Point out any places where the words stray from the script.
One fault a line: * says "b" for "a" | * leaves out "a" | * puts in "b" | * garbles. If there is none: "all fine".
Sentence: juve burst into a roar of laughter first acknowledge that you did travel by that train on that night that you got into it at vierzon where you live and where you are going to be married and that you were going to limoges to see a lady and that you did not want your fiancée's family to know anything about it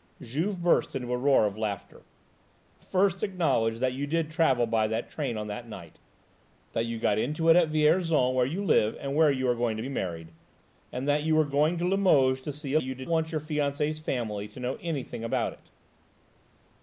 * leaves out "lady and that"
* leaves out "not"